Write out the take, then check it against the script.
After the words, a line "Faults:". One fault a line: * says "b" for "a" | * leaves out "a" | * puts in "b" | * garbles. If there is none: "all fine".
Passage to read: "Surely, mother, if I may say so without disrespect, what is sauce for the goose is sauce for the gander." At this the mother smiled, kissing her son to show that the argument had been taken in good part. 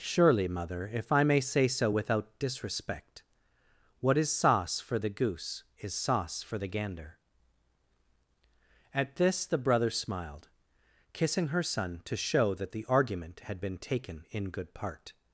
"Surely, mother, if I may say so without disrespect, what is sauce for the goose is sauce for the gander." At this the brother smiled, kissing her son to show that the argument had been taken in good part.
Faults:
* says "brother" for "mother"